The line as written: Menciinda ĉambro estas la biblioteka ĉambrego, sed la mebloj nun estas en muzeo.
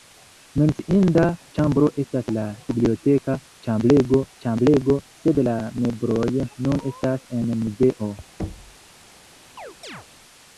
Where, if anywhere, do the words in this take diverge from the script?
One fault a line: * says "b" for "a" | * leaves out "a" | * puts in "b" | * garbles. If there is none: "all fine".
* puts in "ĉambrego"